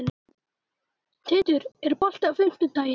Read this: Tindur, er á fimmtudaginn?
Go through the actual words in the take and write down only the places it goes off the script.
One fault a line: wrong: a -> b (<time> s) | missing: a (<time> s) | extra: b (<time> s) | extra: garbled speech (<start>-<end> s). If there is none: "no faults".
extra: bolti (2.0 s)